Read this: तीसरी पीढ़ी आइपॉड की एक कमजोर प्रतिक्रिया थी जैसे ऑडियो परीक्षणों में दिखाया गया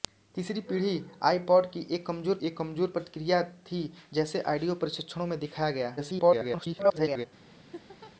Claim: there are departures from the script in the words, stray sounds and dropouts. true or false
true